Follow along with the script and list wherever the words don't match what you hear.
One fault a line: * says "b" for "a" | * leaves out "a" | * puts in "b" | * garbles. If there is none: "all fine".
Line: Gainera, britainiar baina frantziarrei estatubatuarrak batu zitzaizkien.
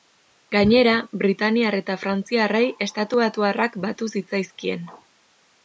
* says "eta" for "baina"